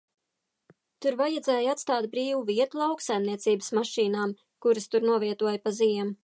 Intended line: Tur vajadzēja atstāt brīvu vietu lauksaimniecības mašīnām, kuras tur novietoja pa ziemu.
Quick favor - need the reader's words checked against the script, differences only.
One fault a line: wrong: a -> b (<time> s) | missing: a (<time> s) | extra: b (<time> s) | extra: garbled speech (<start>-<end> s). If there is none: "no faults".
no faults